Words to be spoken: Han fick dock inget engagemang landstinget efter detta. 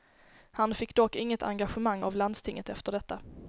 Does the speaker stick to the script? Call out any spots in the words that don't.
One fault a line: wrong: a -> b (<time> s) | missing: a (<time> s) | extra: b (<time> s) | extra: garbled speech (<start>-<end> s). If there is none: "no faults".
extra: av (2.0 s)